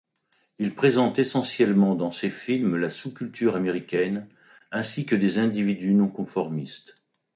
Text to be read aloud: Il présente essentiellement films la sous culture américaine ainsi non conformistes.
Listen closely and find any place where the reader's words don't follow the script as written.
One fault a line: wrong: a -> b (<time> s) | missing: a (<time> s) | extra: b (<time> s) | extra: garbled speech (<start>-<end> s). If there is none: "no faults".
extra: dans ses (1.9 s)
extra: que des individus (5.0 s)